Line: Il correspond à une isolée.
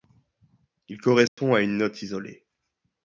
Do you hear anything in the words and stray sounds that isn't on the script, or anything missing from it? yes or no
yes